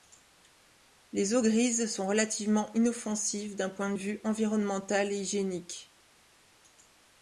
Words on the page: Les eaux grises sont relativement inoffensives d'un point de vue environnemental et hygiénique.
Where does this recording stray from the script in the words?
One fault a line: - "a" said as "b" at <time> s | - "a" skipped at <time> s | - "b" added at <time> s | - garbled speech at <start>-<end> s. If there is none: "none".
none